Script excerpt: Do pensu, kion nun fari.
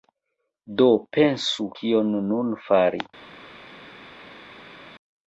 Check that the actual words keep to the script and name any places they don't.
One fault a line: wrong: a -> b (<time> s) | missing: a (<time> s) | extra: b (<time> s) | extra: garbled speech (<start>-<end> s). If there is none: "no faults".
no faults